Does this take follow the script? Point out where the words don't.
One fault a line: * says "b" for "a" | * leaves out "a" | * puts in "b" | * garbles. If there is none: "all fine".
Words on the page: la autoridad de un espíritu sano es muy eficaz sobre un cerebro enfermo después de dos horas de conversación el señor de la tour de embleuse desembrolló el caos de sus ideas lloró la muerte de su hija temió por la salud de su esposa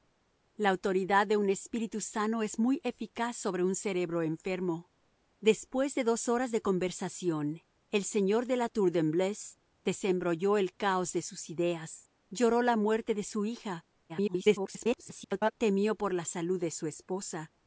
* garbles